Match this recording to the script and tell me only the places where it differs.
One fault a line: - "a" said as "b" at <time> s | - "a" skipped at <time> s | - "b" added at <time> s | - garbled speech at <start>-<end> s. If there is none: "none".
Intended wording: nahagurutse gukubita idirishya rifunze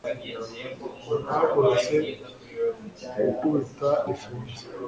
- "idirishya" skipped at 3.9 s